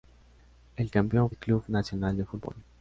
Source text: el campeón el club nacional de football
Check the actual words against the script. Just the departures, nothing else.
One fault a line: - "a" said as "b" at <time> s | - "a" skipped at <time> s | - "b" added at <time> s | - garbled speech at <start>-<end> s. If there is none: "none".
none